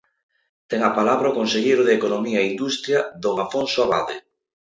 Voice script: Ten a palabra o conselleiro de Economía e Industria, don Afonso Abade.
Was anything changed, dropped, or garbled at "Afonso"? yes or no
no